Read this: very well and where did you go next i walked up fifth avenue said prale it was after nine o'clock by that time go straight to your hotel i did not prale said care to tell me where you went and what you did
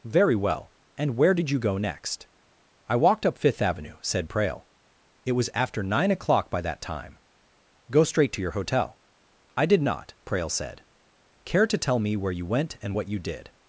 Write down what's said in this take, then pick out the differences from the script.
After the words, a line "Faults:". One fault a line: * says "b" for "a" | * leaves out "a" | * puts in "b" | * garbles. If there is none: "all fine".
very well and where did you go next i walked up fifth avenue said prale it was after nine o'clock by that time go straight to your hotel i did not prale said care to tell me where you went and what you did
Faults:
all fine